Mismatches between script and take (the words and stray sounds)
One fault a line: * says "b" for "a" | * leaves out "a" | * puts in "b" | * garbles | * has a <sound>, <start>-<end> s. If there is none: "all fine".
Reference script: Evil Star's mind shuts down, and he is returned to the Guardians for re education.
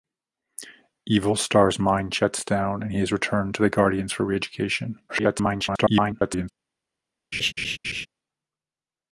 * garbles
* has a laugh, 7.3-8.1 s